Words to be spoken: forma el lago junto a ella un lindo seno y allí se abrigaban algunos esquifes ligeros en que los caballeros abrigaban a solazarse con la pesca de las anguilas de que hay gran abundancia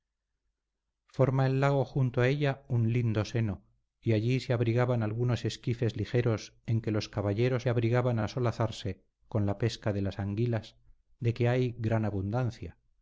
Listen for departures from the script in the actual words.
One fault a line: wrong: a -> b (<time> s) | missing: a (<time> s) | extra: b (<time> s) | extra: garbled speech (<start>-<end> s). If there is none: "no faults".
no faults